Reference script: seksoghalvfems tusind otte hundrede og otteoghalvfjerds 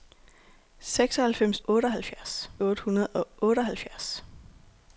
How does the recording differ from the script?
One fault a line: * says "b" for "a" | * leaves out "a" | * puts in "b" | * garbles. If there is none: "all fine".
* says "otteoghalvfjerds" for "tusind"